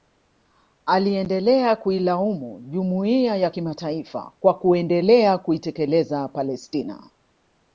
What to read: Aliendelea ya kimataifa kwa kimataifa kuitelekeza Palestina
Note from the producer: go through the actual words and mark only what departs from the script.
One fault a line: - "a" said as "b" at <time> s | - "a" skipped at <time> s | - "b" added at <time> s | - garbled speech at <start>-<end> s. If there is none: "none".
- "kuilaumu Jumuiya" added at 1.8 s
- "kimataifa" said as "kuendelea" at 4.6 s